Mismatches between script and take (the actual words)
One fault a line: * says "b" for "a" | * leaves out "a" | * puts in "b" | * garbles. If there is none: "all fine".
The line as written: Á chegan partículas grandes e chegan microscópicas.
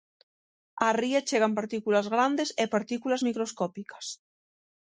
* puts in "ría"
* says "partículas" for "chegan"